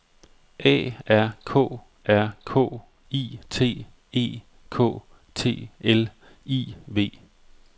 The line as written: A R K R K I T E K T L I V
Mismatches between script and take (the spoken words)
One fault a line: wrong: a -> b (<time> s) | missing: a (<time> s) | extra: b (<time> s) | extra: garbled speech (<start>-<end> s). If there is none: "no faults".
no faults